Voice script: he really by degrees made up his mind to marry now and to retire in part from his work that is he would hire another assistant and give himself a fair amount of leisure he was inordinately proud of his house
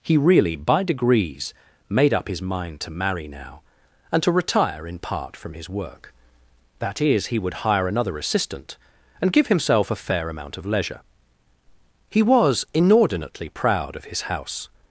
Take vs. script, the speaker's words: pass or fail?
pass